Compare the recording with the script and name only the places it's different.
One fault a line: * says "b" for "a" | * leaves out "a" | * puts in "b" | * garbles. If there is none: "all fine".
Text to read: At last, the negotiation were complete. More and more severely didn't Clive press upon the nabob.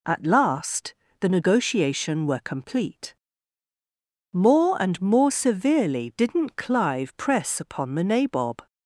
all fine